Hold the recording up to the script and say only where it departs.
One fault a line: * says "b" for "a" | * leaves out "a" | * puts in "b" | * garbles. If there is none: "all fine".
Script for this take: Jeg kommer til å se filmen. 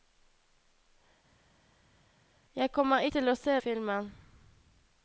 all fine